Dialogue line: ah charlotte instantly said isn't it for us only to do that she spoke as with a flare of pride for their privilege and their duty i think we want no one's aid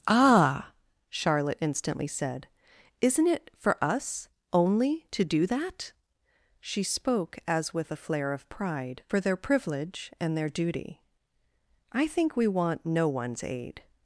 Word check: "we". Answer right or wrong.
right